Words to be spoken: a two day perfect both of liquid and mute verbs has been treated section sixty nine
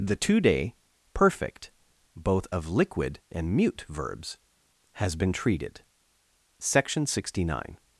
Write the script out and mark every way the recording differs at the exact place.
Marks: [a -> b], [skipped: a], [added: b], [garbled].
[a -> the] two day perfect both of liquid and mute verbs has been treated section sixty nine